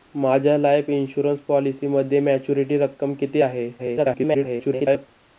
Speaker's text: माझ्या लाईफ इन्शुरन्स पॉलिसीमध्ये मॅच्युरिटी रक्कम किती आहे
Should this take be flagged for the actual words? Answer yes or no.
yes